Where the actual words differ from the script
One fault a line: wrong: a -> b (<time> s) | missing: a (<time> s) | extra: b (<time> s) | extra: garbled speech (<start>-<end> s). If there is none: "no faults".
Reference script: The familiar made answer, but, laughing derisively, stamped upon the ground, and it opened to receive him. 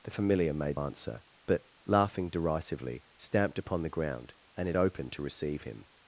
no faults